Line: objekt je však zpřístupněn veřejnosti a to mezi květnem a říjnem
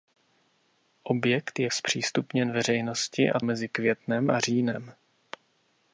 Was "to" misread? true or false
true